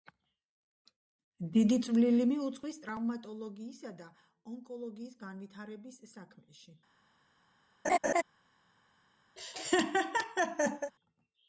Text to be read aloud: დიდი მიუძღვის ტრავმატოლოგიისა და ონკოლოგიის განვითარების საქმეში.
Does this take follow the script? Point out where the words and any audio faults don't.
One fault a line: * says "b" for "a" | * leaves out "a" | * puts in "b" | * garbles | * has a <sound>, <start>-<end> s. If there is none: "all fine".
* puts in "წვლილი"
* has a laugh, 7.8-8.2 s
* has a laugh, 9.4-10.9 s